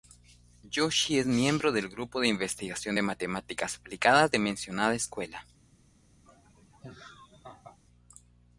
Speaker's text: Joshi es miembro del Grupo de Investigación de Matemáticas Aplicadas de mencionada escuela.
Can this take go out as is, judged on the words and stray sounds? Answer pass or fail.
fail